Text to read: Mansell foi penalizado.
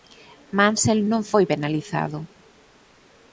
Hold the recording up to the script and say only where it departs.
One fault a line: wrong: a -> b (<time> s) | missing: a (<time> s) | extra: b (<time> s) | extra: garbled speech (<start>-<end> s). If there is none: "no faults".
extra: non (1.1 s)